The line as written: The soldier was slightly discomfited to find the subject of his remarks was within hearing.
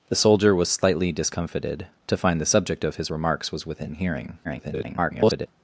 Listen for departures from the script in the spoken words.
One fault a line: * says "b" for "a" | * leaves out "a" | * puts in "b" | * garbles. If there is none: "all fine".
* garbles